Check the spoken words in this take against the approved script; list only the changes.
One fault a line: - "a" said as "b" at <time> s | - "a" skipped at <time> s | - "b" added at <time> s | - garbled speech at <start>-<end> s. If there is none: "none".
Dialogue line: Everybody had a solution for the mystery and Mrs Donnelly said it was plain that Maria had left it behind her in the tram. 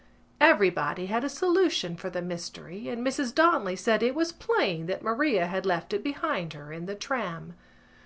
none